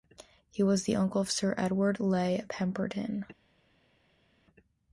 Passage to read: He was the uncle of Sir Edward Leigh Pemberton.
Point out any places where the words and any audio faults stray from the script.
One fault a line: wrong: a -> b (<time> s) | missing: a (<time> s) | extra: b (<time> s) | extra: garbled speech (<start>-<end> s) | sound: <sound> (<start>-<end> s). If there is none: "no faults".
no faults